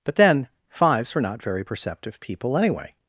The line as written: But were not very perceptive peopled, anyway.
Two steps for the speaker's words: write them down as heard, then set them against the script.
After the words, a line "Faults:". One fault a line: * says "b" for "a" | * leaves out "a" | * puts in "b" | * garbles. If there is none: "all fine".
But then, Fives were not very perceptive people, anyway.
Faults:
* puts in "then Fives"
* says "people" for "peopled"